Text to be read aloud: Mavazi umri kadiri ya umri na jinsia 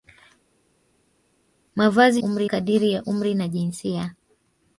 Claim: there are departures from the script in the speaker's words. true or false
false